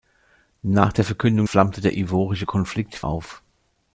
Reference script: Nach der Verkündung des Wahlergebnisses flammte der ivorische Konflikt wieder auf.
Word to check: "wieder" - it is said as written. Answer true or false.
false